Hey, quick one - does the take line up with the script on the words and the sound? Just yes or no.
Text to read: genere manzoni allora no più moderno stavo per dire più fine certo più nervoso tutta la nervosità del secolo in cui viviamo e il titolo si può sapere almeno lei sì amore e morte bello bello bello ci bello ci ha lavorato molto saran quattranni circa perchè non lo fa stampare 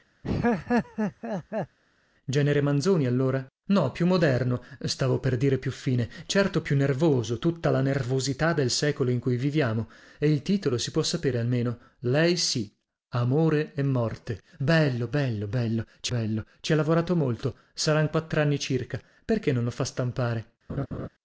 no